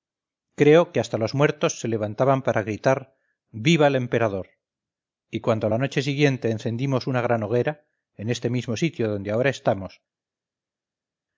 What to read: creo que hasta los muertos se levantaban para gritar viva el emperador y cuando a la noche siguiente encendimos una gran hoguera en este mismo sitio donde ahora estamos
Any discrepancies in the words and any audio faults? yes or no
no